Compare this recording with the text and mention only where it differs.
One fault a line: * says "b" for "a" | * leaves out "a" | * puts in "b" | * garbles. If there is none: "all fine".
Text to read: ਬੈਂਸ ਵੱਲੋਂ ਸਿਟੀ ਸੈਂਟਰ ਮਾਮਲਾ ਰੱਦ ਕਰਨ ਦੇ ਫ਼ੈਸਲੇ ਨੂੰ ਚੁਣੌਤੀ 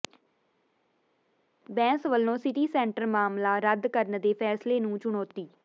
all fine